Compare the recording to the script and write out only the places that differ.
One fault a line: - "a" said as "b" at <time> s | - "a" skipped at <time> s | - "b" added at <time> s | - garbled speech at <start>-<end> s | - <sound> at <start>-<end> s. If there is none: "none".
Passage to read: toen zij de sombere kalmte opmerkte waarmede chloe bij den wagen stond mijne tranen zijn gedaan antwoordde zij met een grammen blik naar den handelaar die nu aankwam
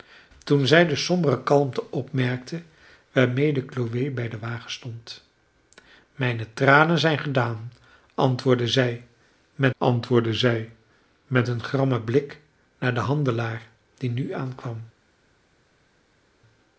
- "antwoordde zij met" added at 9.8 s